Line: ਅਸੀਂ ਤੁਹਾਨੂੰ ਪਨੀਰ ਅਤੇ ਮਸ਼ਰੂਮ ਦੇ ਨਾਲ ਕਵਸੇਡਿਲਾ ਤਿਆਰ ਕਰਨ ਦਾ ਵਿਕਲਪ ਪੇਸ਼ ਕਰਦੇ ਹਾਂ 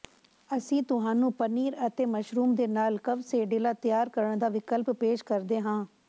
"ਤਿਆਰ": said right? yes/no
yes